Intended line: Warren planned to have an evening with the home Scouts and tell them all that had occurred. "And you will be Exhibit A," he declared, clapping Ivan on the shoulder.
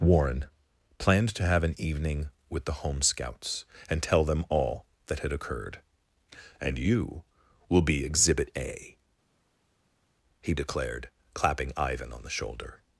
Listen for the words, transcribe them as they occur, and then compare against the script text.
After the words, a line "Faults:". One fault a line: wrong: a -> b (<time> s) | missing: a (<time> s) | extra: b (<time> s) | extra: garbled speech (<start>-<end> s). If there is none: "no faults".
Warren planned to have an evening with the home Scouts and tell them all that had occurred. "And you will be Exhibit A," he declared, clapping Ivan on the shoulder.
Faults:
no faults